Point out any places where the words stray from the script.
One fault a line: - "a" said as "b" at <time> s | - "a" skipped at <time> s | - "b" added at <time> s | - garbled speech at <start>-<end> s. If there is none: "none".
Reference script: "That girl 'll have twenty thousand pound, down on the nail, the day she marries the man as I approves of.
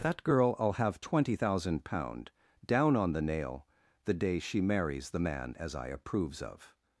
none